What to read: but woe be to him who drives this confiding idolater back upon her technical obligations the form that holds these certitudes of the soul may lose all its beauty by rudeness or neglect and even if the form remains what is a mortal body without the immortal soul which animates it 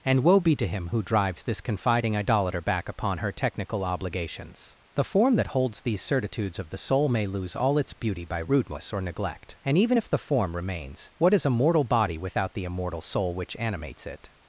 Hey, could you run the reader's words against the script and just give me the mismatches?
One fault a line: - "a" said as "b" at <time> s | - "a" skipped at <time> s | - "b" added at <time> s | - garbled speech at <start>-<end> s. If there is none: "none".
- "but" said as "and" at 0.0 s